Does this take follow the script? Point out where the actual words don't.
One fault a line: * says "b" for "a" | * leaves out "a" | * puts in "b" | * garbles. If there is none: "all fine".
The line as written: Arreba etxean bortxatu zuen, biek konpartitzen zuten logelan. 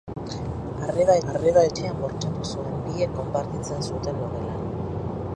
* puts in "arreba"